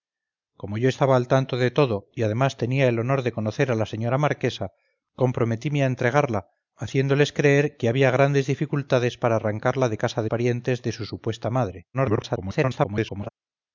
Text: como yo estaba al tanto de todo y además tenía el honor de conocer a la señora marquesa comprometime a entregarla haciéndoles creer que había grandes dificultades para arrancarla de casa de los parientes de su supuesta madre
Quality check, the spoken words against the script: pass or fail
fail